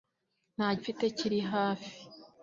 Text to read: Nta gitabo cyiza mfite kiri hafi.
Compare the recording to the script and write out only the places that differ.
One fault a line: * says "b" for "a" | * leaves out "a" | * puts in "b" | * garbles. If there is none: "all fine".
* leaves out "gitabo cyiza"